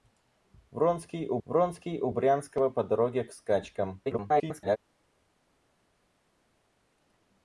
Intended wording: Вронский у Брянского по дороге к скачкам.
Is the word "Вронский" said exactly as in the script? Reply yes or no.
yes